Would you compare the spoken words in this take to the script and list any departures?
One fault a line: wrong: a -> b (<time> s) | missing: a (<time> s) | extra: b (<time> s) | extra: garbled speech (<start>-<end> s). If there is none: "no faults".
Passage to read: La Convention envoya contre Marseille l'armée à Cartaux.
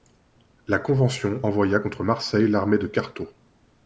wrong: à -> de (2.8 s)